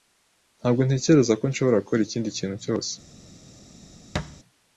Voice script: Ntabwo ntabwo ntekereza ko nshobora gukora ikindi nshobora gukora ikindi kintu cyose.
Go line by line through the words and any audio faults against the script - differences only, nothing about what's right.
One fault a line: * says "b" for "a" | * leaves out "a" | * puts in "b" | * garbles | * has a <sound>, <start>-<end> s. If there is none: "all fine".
* leaves out "ntabwo"
* leaves out "nshobora gukora ikindi"
* has a thud, 4.1-4.4 s